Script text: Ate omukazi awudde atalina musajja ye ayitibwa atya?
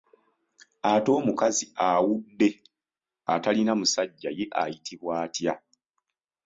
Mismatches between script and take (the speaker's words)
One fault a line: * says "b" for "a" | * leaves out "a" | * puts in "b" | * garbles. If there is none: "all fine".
all fine